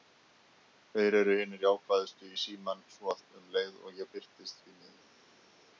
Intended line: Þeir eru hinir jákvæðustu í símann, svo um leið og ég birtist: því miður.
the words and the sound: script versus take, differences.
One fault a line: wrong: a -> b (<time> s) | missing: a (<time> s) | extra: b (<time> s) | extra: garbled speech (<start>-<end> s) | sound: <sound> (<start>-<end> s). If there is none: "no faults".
no faults